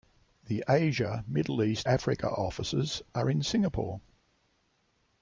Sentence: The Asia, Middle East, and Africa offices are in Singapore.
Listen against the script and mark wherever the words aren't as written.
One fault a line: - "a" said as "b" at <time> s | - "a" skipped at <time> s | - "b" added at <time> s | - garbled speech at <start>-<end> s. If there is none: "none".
- "and" skipped at 1.9 s